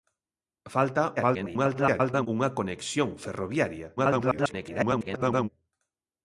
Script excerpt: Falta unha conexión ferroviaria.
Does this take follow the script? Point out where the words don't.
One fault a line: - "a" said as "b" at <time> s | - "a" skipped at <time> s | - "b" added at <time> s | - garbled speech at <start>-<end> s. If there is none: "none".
- garbled speech at 1.2-2.3 s
- garbled speech at 4.0-5.5 s